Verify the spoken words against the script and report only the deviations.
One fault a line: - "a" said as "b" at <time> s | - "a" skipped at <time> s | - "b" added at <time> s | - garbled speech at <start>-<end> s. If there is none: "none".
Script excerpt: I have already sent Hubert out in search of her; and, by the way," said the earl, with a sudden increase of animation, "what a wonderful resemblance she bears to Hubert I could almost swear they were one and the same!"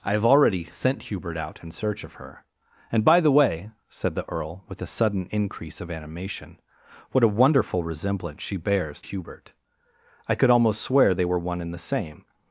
- "to" skipped at 9.0 s